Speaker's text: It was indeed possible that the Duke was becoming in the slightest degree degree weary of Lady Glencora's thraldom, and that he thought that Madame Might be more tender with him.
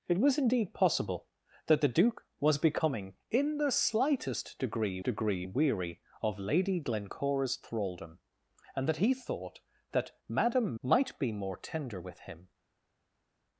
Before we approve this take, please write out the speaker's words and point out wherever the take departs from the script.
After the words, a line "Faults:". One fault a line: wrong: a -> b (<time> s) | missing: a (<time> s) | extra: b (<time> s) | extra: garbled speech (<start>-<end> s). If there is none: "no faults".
It was indeed possible that the Duke was becoming in the slightest degree degree weary of Lady Glencora's thraldom, and that he thought that Madame Might be more tender with him.
Faults:
no faults